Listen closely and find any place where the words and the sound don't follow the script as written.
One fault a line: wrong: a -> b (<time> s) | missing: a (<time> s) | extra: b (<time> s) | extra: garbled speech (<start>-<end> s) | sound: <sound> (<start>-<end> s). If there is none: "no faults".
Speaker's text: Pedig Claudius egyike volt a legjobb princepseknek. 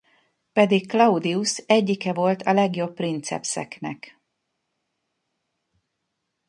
no faults